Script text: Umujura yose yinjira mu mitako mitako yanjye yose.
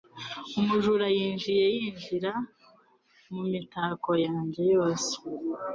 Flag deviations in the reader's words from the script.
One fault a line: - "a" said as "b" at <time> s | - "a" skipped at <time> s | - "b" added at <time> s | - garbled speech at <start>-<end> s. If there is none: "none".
- "yose" said as "yinjiye" at 1.1 s
- "mitako" skipped at 4.1 s